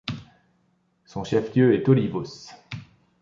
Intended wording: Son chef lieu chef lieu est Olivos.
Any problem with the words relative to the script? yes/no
yes